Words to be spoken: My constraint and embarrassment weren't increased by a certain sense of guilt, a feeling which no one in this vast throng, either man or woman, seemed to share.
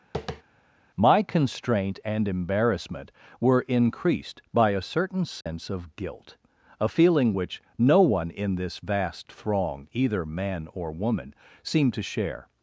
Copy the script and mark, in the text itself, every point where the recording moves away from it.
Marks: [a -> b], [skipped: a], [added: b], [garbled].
My constraint and embarrassment [weren't -> were] increased by a certain sense of guilt, a feeling which no one in this vast throng, either man or woman, seemed to share.